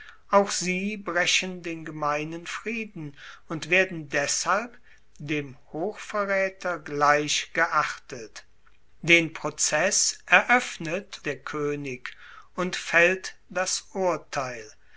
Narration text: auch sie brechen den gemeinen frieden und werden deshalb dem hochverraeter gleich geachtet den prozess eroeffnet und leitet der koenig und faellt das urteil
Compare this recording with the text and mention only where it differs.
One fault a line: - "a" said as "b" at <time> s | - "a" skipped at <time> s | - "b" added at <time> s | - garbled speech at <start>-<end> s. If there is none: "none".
- "und leitet" skipped at 11.2 s